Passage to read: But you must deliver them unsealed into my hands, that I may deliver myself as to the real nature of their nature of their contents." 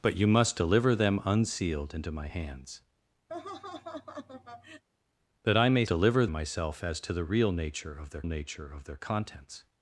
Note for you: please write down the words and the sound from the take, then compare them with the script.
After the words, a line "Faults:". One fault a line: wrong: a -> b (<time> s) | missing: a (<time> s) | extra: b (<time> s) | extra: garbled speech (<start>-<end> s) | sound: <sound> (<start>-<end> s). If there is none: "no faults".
But you must deliver them unsealed into my hands, that I may deliver myself as to the real nature of their nature of their contents."
Faults:
sound: laugh (3.3-4.8 s)